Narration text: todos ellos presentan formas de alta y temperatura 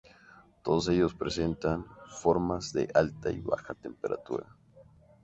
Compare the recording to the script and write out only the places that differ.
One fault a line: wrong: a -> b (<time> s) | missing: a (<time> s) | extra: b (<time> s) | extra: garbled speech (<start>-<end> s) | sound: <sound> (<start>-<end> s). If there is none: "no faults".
extra: baja (3.4 s)